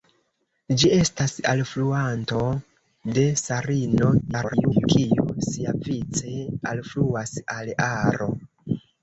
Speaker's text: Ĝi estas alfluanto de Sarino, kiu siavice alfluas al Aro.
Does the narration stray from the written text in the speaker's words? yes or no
yes